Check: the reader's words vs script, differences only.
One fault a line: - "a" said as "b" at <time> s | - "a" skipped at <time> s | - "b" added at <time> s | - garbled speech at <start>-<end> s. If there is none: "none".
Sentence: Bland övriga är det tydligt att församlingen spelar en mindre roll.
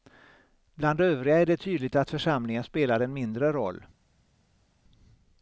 none